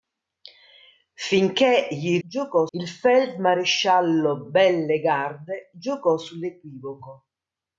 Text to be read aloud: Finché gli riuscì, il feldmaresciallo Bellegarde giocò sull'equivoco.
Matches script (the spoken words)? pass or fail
fail